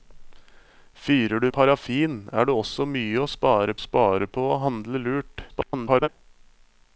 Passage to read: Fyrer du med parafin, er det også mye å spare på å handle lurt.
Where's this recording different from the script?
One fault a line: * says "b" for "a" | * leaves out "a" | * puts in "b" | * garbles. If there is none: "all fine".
* leaves out "med"
* puts in "spare"
* garbles